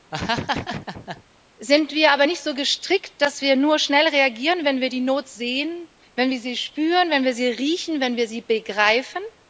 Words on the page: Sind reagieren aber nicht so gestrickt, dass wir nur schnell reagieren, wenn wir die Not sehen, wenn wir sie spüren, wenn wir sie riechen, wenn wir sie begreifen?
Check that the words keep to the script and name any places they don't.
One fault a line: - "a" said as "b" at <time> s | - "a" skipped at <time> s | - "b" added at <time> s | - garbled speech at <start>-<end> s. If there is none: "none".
- "reagieren" said as "wir" at 1.9 s